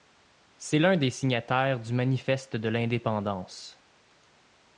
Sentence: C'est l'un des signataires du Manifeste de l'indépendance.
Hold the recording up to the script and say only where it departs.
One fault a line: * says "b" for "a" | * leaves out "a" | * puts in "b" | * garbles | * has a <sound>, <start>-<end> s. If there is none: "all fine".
all fine